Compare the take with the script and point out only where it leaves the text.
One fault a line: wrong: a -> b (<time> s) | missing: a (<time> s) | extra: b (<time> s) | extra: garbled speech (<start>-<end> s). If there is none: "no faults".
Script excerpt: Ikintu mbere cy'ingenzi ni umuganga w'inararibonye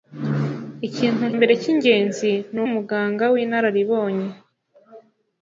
no faults